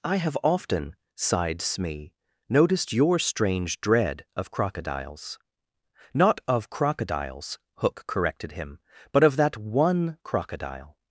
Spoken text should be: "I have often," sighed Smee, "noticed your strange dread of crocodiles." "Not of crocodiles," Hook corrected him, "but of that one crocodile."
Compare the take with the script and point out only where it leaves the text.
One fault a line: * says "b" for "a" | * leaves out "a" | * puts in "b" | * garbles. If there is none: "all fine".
all fine